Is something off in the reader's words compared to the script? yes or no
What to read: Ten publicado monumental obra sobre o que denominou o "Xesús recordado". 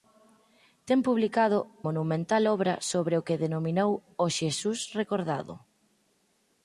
no